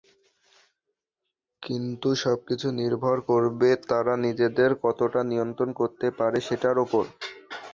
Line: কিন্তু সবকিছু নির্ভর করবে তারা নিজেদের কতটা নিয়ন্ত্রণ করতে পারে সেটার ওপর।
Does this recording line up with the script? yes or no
yes